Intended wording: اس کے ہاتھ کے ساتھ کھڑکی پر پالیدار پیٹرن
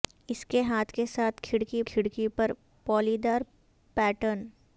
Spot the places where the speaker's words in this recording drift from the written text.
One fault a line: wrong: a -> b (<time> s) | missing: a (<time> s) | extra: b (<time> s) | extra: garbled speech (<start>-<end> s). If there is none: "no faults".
extra: کھڑکی (1.8 s)